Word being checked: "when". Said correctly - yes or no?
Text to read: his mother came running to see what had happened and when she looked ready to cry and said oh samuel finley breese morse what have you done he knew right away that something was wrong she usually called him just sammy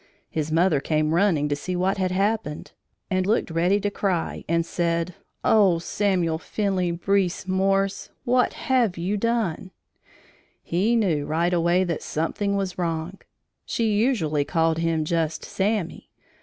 no